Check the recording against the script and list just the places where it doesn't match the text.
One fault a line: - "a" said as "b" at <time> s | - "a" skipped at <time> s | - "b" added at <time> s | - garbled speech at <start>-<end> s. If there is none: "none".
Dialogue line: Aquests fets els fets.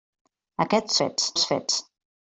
none